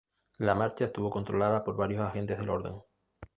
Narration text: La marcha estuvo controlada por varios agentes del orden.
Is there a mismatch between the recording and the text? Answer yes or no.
no